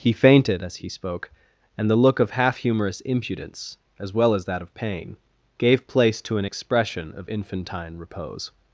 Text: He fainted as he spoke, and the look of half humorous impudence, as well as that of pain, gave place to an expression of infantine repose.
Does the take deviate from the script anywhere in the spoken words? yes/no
no